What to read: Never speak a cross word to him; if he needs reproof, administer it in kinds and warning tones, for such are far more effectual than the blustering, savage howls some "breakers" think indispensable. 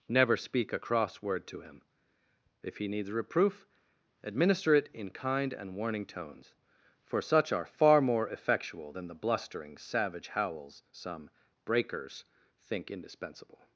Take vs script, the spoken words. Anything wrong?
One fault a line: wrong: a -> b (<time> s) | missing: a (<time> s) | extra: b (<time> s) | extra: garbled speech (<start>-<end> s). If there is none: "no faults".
wrong: kinds -> kind (5.1 s)